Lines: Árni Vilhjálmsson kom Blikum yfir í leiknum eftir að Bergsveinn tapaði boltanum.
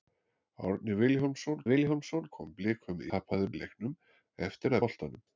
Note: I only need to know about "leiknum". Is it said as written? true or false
true